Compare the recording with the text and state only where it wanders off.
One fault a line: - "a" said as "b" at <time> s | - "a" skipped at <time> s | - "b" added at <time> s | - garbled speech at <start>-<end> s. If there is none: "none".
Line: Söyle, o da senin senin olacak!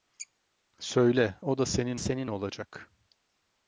none